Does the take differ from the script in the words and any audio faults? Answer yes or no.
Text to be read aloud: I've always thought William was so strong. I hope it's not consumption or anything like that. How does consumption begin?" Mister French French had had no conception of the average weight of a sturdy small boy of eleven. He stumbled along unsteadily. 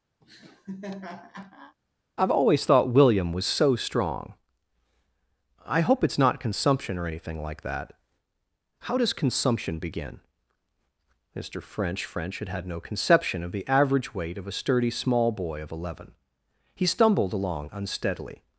yes